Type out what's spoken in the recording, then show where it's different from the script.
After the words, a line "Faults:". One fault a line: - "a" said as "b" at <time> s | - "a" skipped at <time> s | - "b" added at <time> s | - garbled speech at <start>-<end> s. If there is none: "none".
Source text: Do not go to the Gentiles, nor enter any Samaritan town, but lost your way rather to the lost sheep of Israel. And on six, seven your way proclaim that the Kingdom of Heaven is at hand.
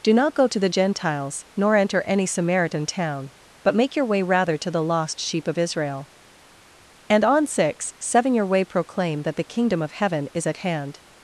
Do not go to the Gentiles, nor enter any Samaritan town, but make your way rather to the lost sheep of Israel. And on six, seven your way proclaim that the Kingdom of Heaven is at hand.
Faults:
- "lost" said as "make" at 3.8 s